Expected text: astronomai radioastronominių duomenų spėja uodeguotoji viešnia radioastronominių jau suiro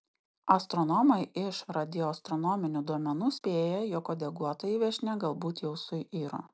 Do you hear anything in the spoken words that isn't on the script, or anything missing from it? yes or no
yes